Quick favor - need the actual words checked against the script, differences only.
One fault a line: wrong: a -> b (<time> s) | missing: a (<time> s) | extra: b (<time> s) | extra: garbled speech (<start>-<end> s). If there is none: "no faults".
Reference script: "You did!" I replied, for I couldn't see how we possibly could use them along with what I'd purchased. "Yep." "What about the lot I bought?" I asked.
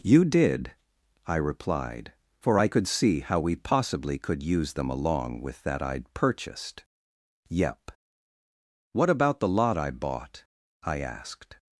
wrong: couldn't -> could (2.7 s)
wrong: what -> that (5.6 s)